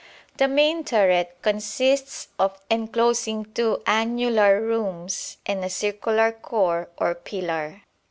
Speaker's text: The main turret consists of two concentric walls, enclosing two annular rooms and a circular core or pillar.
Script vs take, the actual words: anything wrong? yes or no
yes